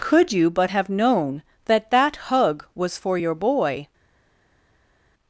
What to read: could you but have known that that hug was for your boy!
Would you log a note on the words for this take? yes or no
no